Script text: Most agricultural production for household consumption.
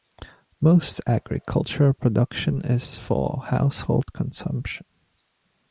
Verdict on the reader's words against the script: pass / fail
fail